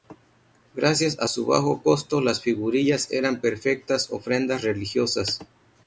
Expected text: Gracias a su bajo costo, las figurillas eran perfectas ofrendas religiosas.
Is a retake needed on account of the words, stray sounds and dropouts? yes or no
no